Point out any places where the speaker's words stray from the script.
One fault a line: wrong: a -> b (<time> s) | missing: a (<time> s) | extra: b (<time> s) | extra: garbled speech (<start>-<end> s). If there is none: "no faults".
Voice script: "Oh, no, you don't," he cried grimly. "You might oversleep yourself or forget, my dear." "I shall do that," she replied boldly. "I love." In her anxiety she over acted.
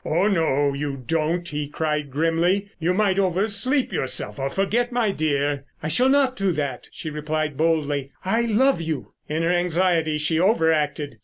extra: not (6.1 s)
extra: you (8.8 s)